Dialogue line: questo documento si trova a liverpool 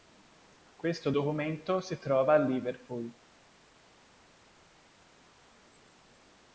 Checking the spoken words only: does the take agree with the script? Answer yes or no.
yes